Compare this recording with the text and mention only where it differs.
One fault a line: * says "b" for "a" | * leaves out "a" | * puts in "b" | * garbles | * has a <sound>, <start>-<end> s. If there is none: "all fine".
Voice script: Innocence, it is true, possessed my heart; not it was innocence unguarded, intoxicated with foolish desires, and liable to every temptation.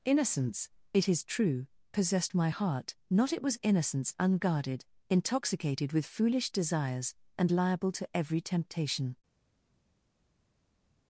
all fine